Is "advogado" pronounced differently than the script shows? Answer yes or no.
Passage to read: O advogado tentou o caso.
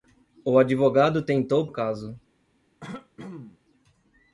no